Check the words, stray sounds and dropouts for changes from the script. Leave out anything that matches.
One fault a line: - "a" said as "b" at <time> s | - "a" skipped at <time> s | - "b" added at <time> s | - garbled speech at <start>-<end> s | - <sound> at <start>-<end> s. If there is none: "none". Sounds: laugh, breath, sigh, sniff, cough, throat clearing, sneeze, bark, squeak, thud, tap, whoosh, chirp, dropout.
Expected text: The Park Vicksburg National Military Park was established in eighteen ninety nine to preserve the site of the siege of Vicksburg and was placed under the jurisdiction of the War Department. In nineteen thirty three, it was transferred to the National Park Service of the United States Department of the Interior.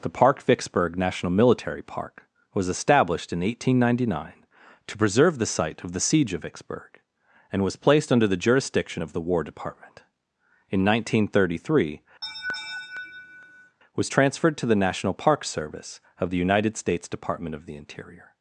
- "it" skipped at 12.0 s
- laugh at 12.2-13.8 s